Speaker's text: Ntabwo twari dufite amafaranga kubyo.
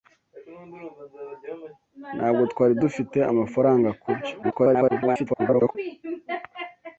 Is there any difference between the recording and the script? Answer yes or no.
yes